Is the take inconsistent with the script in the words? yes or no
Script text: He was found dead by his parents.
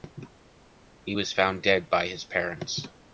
no